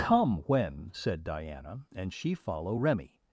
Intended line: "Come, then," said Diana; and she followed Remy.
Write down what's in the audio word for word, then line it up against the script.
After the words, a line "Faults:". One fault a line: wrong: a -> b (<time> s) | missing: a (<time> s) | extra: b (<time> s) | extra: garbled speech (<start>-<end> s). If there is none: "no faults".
"Come, when," said Diana; and she follow Remy.
Faults:
wrong: then -> when (0.5 s)
wrong: followed -> follow (2.3 s)